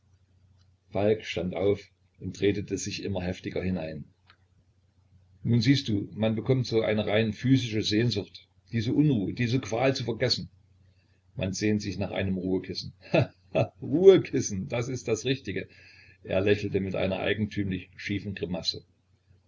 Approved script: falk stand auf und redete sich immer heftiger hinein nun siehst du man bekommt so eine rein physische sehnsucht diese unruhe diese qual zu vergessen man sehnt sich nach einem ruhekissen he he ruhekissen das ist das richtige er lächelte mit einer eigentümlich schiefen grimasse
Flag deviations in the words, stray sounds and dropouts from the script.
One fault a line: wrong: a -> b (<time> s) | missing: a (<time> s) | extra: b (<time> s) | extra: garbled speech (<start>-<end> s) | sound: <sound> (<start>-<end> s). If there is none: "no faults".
no faults